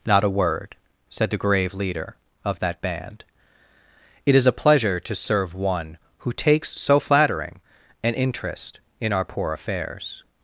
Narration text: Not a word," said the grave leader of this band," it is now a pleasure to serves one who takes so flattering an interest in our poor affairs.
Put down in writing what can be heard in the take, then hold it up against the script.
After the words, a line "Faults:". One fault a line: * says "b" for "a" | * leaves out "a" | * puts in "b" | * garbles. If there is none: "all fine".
Not a word," said the grave leader of that band," it is a pleasure to serve one who takes so flattering an interest in our poor affairs.
Faults:
* says "that" for "this"
* leaves out "now"
* says "serve" for "serves"